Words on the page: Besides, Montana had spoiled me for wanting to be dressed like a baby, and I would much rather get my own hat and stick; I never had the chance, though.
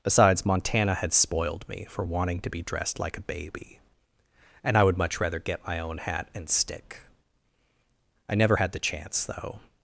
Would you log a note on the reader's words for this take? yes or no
no